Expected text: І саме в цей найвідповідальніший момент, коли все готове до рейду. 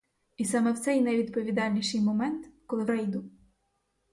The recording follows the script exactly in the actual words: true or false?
false